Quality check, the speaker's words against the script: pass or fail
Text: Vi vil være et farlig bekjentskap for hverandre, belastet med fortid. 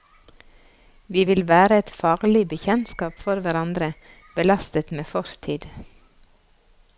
pass